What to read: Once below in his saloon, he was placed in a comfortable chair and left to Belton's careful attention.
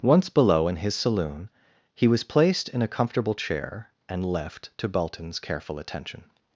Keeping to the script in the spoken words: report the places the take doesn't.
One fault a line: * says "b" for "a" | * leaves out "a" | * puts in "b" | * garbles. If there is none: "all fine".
all fine